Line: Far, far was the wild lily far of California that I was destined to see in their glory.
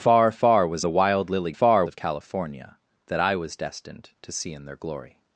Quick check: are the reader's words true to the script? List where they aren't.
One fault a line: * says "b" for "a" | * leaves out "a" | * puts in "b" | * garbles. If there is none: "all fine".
all fine